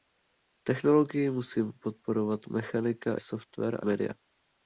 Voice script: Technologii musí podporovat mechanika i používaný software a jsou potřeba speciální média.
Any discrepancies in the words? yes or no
yes